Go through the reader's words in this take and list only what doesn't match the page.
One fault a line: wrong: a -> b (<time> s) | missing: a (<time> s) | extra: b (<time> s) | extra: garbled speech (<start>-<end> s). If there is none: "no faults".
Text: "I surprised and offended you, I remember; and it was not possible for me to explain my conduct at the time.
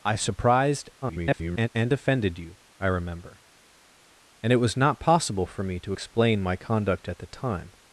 extra: garbled speech (1.0-1.7 s)